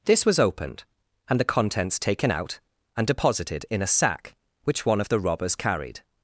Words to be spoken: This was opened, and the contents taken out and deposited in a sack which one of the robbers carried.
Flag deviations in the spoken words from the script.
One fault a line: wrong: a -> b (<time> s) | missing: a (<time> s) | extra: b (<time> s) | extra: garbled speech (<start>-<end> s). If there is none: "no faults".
no faults